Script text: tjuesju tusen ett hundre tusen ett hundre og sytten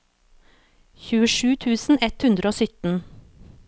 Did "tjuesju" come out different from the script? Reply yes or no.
no